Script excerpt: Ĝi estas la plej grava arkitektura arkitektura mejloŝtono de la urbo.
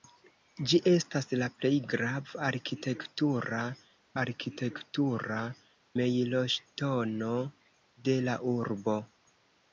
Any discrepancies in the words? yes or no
no